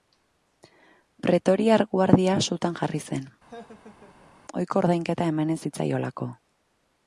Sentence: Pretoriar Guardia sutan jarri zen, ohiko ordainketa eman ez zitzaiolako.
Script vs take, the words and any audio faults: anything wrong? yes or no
yes